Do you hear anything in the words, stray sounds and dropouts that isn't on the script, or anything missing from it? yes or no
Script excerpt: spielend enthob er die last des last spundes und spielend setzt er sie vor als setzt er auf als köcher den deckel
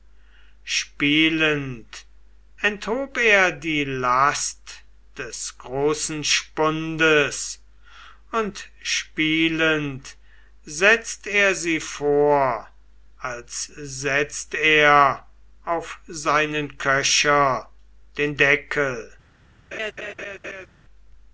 yes